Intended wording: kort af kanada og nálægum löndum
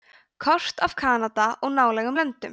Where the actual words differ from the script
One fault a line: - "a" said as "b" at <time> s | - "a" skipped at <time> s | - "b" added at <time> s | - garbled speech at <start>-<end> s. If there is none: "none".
none